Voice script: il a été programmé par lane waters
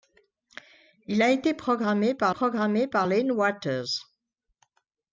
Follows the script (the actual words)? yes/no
no